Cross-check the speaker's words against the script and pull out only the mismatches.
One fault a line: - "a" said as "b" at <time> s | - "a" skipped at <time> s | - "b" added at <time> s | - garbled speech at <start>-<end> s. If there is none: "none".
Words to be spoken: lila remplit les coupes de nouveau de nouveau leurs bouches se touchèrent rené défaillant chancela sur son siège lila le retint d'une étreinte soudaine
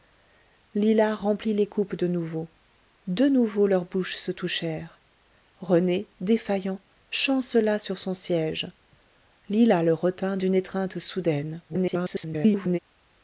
- garbled speech at 11.7-12.8 s